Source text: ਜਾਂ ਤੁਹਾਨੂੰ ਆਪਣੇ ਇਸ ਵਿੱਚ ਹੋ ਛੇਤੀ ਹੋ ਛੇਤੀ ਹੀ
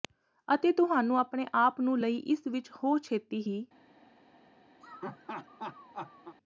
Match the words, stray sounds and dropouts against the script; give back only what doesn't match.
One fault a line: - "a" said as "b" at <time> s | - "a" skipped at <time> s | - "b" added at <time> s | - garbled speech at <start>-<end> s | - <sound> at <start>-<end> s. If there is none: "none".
- "ਜਾਂ" said as "ਅਤੇ" at 0.5 s
- "ਆਪ ਨੂੰ ਲਈ" added at 1.6 s
- "ਹੋ ਛੇਤੀ" skipped at 3.4 s
- laugh at 4.8-6.4 s